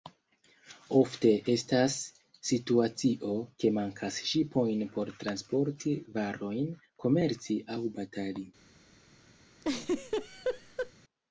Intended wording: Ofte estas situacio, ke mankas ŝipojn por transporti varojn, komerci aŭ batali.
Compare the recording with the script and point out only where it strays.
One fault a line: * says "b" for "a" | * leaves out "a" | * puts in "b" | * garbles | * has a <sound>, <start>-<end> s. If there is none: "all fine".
* has a laugh, 9.6-10.9 s